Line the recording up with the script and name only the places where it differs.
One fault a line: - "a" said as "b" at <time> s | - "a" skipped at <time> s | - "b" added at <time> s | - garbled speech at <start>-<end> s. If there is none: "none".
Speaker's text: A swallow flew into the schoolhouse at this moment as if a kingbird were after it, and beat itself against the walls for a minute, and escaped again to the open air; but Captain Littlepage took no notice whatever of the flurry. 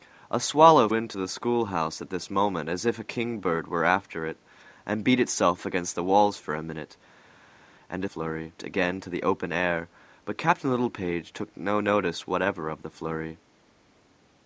- "flew" skipped at 0.9 s
- "escaped" said as "flurry" at 8.0 s